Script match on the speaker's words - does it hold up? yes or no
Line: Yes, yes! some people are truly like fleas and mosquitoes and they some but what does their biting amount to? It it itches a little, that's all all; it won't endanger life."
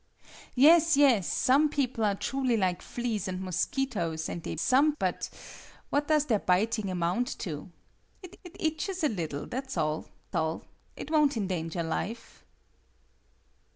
yes